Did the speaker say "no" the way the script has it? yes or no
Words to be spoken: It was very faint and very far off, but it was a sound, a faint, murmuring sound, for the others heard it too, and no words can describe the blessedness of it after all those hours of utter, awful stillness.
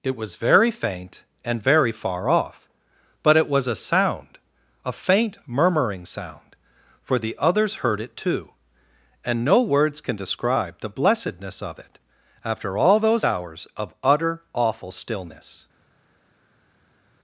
yes